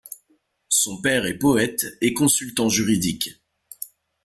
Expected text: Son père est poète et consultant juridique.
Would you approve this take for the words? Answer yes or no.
yes